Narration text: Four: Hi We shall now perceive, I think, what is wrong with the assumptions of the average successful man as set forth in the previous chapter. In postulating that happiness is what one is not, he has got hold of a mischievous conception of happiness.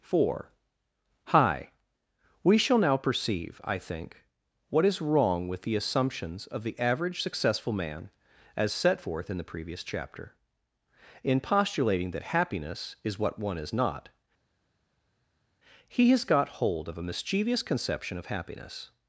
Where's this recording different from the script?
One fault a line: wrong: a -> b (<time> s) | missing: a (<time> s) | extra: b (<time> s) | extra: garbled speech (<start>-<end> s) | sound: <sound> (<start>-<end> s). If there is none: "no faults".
no faults